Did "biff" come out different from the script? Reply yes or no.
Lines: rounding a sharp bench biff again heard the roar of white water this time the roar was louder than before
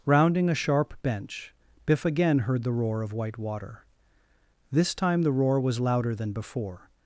no